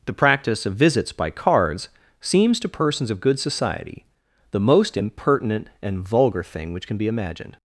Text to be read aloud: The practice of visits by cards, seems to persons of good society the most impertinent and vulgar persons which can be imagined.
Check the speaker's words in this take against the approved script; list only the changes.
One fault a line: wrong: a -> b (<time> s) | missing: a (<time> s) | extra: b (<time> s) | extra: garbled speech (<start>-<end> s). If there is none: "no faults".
wrong: persons -> thing (6.4 s)